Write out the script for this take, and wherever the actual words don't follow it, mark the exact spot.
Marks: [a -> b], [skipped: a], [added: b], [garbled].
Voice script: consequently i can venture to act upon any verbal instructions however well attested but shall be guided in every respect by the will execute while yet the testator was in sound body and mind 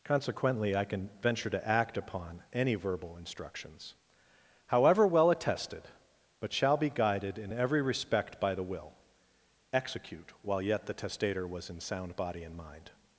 consequently i can venture to act upon any verbal instructions however well attested but shall be guided in every respect by the will execute while yet the testator was in sound body and mind